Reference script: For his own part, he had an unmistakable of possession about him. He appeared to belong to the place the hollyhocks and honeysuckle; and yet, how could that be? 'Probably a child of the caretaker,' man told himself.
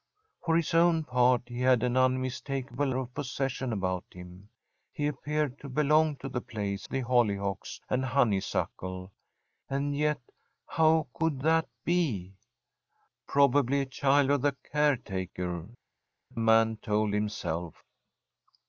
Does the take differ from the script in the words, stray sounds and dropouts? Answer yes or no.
no